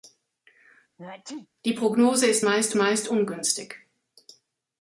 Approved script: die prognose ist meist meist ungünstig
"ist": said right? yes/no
yes